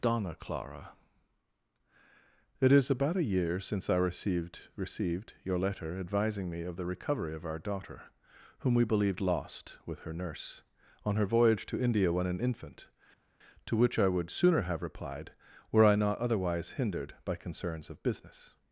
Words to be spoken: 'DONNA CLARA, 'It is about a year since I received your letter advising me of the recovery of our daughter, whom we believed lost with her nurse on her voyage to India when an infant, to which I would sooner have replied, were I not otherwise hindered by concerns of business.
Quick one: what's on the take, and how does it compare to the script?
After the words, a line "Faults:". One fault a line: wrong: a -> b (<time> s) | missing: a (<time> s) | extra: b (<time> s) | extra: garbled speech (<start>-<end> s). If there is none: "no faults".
'DONNA CLARA, 'It is about a year since I received received your letter advising me of the recovery of our daughter, whom we believed lost with her nurse on her voyage to India when an infant, to which I would sooner have replied, were I not otherwise hindered by concerns of business.
Faults:
extra: received (4.8 s)